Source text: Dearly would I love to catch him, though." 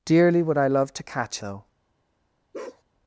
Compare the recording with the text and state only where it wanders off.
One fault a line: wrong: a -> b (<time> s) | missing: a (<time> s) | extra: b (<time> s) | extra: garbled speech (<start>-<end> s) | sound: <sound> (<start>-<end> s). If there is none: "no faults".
missing: him (1.4 s)
sound: bark (2.5-2.8 s)